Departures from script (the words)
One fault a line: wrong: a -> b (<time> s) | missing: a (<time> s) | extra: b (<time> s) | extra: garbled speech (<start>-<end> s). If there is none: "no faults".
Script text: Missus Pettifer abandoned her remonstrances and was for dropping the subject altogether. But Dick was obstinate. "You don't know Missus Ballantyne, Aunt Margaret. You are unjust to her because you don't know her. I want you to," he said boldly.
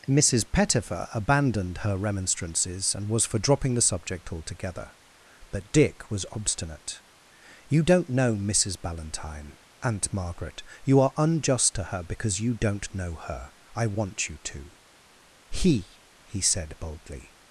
extra: he (16.2 s)